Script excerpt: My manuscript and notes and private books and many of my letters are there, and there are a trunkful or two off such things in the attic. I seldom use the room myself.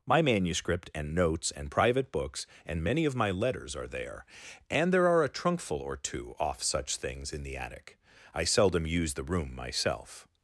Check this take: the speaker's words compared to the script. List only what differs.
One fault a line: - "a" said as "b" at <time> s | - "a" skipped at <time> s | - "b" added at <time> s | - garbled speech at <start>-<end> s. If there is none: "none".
none